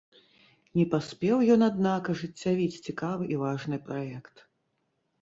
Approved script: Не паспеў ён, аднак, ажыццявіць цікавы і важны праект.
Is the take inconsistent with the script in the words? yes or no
no